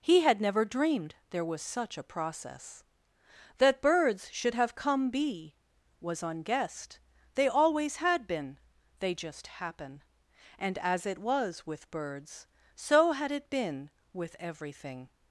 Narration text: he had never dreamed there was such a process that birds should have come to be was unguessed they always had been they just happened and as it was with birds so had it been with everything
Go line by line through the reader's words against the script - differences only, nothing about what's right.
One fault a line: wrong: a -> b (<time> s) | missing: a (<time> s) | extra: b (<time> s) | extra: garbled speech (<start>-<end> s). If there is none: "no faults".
missing: to (5.1 s)
wrong: happened -> happen (9.5 s)